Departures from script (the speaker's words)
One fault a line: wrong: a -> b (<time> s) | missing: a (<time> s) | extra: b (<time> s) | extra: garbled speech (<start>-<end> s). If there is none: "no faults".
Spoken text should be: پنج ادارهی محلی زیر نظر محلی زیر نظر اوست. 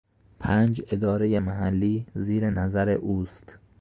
missing: محلی زیر نظر (2.9 s)